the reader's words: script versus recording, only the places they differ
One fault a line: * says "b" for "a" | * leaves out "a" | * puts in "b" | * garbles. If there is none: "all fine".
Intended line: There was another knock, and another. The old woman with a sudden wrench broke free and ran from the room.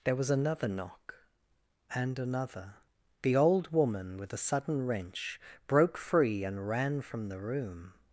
all fine